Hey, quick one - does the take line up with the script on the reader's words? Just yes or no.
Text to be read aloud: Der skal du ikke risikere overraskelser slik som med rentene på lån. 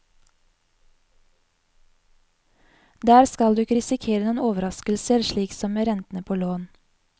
no